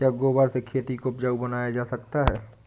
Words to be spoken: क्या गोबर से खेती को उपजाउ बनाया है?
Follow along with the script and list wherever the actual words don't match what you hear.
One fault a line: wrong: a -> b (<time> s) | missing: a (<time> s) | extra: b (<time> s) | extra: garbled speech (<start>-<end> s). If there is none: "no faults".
extra: जा सकता (1.7 s)